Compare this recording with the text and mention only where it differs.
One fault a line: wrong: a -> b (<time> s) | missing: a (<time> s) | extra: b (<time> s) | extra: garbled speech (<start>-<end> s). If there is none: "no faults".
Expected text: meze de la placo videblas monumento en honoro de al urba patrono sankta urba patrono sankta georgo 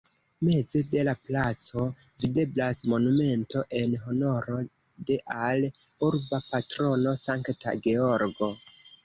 missing: urba patrono sankta (7.8 s)